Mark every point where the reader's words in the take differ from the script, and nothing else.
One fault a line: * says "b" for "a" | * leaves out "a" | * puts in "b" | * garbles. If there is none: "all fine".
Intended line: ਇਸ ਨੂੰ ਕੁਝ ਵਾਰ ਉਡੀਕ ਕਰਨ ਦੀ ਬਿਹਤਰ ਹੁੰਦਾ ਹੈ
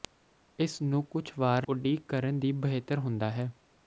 all fine